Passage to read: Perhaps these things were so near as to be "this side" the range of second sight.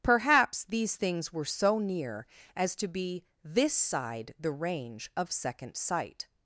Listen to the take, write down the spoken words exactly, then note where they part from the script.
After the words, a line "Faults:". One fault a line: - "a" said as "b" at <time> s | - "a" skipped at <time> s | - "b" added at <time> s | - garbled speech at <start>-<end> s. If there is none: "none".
Perhaps these things were so near as to be "this side" the range of second sight.
Faults:
none